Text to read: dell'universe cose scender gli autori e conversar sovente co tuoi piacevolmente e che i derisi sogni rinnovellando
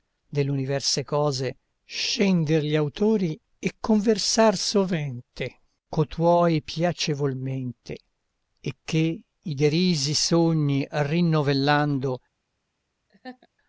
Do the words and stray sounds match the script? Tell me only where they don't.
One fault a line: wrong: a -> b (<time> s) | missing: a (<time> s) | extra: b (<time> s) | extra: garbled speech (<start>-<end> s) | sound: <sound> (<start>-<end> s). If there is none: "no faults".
sound: laugh (13.1-13.5 s)